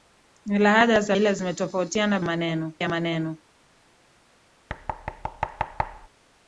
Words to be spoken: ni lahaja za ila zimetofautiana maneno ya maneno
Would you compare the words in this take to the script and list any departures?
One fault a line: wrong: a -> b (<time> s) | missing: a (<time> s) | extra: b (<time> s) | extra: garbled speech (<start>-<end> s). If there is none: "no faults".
no faults